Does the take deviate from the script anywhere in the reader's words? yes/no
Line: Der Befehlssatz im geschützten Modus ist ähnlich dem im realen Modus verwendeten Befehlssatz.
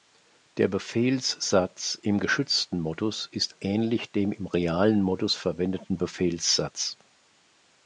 no